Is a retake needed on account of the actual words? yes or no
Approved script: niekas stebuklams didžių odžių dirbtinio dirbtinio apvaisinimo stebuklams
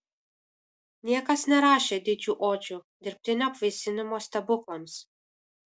yes